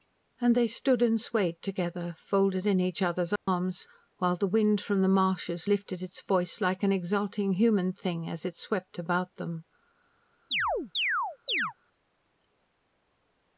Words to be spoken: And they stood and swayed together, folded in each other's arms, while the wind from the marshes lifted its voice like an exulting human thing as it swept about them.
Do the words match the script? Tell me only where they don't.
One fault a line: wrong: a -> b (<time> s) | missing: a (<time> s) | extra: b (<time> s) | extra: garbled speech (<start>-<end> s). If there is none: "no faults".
no faults